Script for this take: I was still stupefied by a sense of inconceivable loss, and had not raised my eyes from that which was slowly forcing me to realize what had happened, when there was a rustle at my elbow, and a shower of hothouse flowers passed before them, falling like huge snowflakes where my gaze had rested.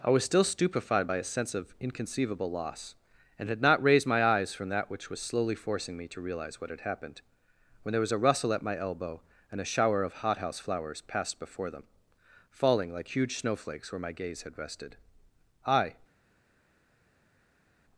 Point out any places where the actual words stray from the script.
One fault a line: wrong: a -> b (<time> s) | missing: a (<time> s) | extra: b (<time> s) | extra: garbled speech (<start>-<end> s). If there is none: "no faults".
extra: I (15.7 s)